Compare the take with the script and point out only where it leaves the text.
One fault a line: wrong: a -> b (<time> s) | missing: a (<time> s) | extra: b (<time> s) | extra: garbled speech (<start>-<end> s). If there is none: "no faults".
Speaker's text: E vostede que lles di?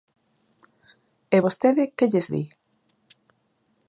no faults